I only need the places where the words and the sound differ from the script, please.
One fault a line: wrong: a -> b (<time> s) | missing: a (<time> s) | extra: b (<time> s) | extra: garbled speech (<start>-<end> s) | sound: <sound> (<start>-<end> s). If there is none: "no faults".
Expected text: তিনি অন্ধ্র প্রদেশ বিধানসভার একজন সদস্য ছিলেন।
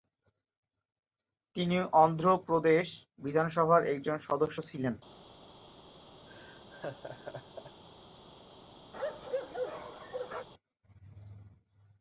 sound: laugh (6.3-7.8 s)
sound: bark (8.9-10.5 s)